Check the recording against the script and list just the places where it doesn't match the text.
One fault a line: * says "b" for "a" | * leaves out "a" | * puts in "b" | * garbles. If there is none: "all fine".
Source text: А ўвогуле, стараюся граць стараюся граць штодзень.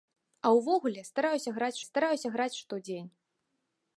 all fine